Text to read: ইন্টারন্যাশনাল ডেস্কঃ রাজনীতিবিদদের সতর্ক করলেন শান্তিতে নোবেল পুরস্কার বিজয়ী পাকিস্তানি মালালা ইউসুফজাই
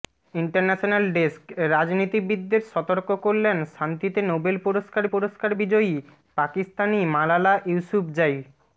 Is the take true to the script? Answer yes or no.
no